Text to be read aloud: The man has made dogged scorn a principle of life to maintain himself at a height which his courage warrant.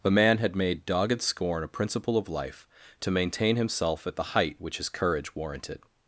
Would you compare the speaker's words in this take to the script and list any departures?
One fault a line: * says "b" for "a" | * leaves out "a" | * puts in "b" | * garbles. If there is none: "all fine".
* says "had" for "has"
* says "the" for "a"
* says "warranted" for "warrant"